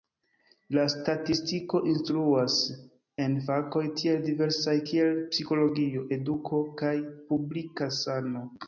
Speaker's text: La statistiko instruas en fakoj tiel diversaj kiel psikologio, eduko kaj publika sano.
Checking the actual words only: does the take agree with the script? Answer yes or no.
yes